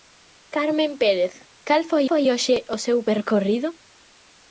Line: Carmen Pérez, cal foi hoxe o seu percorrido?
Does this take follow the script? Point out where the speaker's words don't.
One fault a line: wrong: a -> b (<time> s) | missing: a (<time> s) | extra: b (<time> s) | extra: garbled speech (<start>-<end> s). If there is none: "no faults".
extra: foi (2.1 s)